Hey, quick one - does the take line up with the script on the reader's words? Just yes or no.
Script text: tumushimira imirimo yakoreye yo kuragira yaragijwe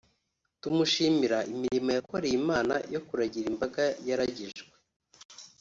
no